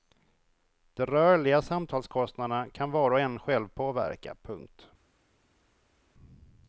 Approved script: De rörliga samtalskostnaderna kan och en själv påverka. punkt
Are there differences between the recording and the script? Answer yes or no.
yes